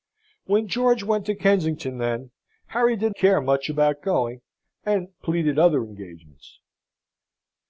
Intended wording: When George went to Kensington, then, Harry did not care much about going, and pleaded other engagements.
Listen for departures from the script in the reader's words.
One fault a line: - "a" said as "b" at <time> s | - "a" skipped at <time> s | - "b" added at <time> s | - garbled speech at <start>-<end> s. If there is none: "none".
- "not" skipped at 3.1 s